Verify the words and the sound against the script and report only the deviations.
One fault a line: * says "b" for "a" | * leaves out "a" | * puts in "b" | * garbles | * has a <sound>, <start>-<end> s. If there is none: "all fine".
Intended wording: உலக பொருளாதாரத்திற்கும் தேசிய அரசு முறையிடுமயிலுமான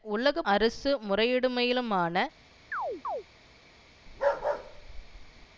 * leaves out "பொருளாதாரத்திற்கும் தேசிய"
* has a chirp, 2.7-3.2 s
* has a bark, 4.1-5.5 s